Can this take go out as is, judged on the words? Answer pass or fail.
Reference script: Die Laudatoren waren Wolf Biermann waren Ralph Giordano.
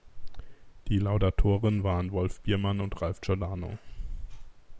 fail